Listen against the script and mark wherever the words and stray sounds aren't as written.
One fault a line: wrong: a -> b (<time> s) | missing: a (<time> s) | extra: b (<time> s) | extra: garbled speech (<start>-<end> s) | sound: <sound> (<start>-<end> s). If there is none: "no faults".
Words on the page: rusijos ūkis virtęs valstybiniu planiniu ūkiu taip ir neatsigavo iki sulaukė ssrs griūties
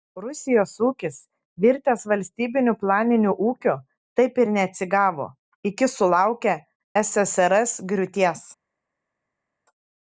no faults